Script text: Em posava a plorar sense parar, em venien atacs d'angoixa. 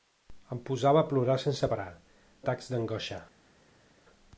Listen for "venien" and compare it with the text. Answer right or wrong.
wrong